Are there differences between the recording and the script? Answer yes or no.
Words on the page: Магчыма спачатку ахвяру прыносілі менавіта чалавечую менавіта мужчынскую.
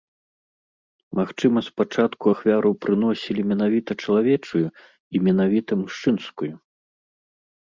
yes